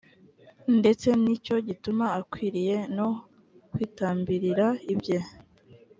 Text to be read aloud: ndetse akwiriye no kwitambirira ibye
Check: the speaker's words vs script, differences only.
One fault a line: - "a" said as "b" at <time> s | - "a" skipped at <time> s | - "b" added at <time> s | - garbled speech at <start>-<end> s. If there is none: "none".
- "ni cyo gituma" added at 1.2 s